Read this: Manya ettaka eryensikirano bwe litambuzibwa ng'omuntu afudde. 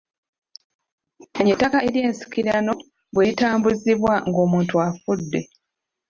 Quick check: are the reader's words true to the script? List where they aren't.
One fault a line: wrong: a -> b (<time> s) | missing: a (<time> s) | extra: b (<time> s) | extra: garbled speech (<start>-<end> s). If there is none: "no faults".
no faults